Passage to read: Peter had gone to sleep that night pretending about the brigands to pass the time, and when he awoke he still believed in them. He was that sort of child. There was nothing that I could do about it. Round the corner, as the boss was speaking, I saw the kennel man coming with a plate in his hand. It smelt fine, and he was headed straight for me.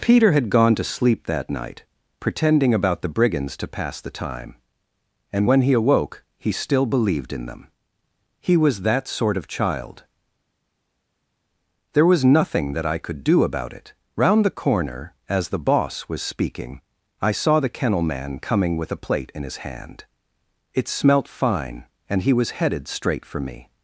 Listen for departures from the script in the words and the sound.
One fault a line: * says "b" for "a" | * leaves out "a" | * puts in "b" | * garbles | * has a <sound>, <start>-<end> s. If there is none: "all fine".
all fine